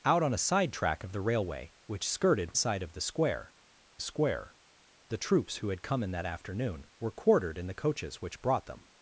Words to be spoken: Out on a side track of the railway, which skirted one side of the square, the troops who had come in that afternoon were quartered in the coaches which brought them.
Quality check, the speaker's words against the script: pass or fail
fail